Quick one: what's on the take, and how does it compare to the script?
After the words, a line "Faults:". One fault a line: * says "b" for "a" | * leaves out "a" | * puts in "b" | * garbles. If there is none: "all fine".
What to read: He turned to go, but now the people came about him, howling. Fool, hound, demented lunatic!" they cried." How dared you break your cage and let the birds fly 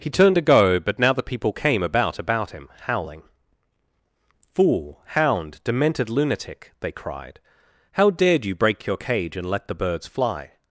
He turned to go, but now the people came about about him, howling. Fool, hound, demented lunatic!" they cried." How dared you break your cage and let the birds fly
Faults:
* puts in "about"